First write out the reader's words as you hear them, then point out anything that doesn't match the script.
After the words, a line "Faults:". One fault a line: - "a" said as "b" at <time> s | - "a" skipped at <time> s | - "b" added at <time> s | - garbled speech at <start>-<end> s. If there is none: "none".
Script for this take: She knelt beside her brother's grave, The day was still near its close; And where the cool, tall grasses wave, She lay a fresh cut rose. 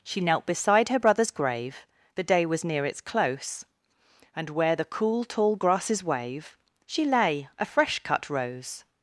She knelt beside her brother's grave, The day was near its close; And where the cool, tall grasses wave, She lay a fresh cut rose.
Faults:
- "still" skipped at 2.6 s